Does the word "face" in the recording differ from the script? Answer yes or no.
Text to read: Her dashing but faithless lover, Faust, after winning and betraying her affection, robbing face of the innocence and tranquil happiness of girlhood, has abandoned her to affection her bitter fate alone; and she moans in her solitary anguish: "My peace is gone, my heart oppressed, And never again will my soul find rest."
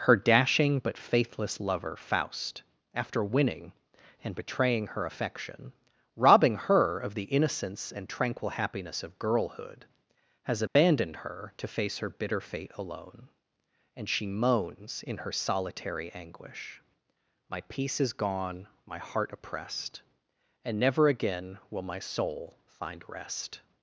yes